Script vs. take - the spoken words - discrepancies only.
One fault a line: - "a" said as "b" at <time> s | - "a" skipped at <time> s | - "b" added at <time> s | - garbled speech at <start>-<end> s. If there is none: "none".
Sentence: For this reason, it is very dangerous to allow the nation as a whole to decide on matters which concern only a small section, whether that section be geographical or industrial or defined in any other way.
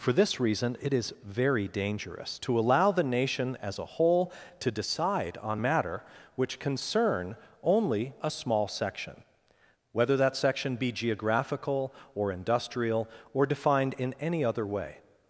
- "matters" said as "matter" at 5.6 s